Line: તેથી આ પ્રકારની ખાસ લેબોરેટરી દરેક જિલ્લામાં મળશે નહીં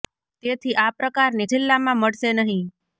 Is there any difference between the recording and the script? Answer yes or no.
yes